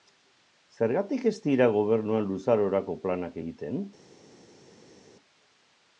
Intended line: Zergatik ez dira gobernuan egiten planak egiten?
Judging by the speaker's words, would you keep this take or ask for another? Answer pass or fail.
fail